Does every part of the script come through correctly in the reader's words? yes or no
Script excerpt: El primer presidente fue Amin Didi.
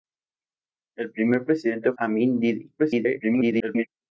no